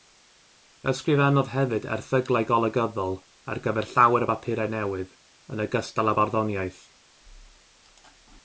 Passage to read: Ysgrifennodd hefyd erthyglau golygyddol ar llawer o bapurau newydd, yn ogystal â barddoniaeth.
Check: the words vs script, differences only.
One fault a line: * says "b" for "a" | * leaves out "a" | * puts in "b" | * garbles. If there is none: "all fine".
* puts in "gyfer"